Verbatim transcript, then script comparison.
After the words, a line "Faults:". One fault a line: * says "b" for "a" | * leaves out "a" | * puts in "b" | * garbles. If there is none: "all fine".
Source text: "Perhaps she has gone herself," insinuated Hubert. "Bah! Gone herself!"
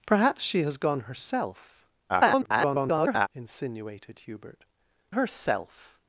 "Perhaps she has gone herself," [garbled] insinuated Hubert. "Herself!"
Faults:
* garbles
* leaves out "Bah Gone"